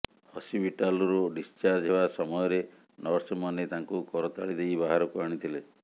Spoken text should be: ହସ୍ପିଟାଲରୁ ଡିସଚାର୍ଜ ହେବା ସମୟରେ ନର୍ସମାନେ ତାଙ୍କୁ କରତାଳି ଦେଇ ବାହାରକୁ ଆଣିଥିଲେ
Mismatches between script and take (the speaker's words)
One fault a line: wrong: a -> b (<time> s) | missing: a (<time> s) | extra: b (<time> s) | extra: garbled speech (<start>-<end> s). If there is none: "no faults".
no faults